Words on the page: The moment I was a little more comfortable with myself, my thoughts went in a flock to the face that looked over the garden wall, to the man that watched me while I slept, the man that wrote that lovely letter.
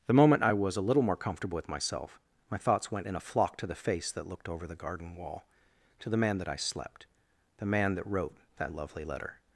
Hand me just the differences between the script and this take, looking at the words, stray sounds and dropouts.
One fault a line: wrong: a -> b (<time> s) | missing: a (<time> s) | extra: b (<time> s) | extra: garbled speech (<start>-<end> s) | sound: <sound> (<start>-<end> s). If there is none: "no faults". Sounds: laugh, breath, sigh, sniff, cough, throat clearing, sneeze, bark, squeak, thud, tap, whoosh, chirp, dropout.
missing: watched me while (6.5 s)